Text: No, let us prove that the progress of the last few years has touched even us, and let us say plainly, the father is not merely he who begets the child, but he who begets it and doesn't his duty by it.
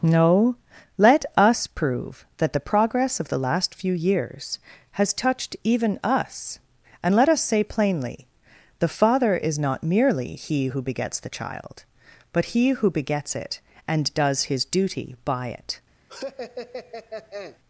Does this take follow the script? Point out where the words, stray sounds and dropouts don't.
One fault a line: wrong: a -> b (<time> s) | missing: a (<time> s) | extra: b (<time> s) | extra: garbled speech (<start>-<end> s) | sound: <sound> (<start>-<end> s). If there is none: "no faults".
wrong: doesn't -> does (14.1 s)
sound: laugh (16.1-17.6 s)